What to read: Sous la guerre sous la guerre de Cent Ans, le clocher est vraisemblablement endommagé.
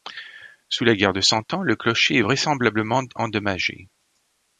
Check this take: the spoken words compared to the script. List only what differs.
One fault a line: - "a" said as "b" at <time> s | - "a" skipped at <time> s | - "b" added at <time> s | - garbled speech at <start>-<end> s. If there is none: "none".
- "sous la guerre" skipped at 1.1 s